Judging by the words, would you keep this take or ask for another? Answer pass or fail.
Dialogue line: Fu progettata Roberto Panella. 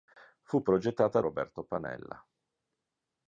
pass